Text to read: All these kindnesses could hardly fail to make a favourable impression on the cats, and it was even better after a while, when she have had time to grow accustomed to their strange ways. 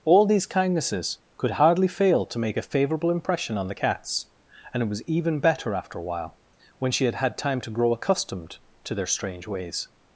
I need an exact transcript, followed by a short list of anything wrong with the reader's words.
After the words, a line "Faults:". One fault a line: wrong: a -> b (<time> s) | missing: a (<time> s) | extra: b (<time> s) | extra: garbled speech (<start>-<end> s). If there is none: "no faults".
All these kindnesses could hardly fail to make a favourable impression on the cats, and it was even better after a while, when she had had time to grow accustomed to their strange ways.
Faults:
wrong: have -> had (7.0 s)